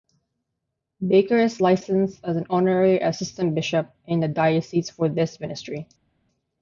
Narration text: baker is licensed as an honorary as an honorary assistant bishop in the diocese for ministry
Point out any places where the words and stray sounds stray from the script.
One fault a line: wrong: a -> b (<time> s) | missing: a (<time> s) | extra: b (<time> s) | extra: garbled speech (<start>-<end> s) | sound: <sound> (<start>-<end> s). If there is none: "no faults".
missing: as an honorary (3.0 s)
extra: this (5.1 s)